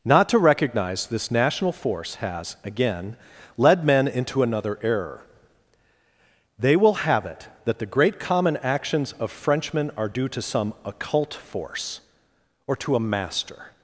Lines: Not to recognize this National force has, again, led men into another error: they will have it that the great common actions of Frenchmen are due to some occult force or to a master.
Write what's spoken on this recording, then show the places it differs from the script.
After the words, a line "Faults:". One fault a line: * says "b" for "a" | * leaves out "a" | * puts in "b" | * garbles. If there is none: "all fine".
Not to recognize this National force has, again, led men into another error: they will have it that the great common actions of Frenchmen are due to some occult force or to a master.
Faults:
all fine